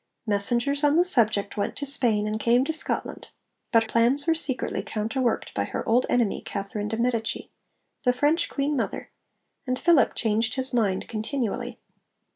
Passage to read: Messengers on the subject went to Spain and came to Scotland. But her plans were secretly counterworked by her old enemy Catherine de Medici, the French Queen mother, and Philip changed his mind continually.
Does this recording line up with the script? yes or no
no